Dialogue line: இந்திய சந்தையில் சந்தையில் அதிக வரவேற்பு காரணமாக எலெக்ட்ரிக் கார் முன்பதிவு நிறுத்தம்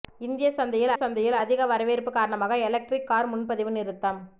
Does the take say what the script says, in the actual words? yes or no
yes